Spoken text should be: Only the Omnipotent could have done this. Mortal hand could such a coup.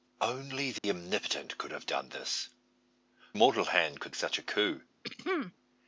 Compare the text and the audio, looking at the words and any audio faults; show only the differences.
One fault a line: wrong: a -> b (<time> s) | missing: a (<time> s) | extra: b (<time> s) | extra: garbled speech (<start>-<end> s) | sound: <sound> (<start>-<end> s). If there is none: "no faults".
sound: dropout (0.8-0.8 s)
sound: throat clearing (5.0-5.5 s)